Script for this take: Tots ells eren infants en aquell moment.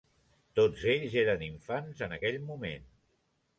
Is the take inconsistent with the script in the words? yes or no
no